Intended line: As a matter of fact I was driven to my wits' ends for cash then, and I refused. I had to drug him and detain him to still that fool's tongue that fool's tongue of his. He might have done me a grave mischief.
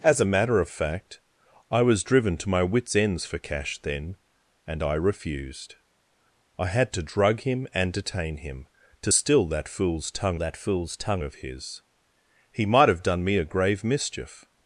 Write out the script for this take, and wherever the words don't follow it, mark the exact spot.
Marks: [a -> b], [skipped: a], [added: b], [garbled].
As a matter of fact I was driven to my wits' ends for cash then, and I refused. I had to drug him and detain him to still that fool's tongue that fool's tongue of his. He might have done me a grave mischief.